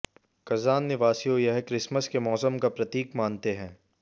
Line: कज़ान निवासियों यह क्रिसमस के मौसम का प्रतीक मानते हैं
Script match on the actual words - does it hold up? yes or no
yes